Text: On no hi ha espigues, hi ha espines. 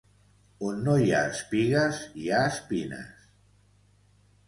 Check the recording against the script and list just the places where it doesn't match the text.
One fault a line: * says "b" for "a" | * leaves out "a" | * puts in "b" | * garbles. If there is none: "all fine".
all fine